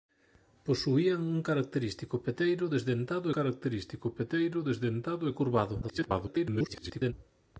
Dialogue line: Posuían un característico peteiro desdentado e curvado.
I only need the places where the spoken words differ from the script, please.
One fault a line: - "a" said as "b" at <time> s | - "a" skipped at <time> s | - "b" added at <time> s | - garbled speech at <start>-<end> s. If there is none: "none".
- "característico peteiro desdentado" added at 3.4 s
- garbled speech at 5.8-7.1 s